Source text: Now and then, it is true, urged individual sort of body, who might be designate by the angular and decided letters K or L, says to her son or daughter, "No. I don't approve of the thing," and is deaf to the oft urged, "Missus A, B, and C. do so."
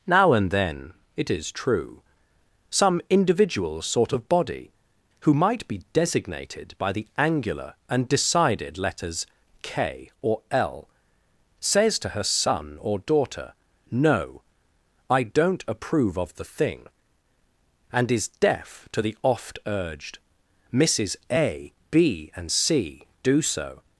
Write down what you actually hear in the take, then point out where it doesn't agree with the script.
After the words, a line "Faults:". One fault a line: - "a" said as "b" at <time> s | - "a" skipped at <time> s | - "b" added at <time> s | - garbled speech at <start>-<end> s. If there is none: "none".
Now and then, it is true, some individual sort of body, who might be designated by the angular and decided letters K or L, says to her son or daughter, "No. I don't approve of the thing," and is deaf to the oft urged, "Missus A, B, and C. do so."
Faults:
- "urged" said as "some" at 2.7 s
- "designate" said as "designated" at 5.9 s